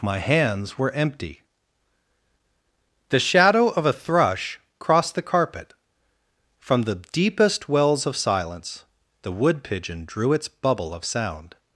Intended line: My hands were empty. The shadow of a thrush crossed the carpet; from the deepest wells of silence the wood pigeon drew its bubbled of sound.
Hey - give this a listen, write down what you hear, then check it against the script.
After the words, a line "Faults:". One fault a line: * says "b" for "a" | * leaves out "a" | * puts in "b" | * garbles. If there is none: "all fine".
My hands were empty. The shadow of a thrush crossed the carpet; from the deepest wells of silence the wood pigeon drew its bubble of sound.
Faults:
* says "bubble" for "bubbled"